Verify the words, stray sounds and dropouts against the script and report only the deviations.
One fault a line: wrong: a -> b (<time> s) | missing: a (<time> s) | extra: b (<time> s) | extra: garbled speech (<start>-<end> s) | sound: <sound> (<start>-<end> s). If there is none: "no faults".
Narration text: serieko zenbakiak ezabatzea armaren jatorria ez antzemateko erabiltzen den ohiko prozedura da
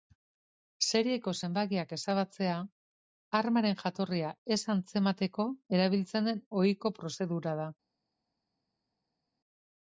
no faults